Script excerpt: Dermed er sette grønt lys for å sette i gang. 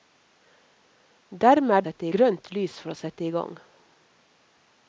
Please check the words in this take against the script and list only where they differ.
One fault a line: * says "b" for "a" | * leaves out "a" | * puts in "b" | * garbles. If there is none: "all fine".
all fine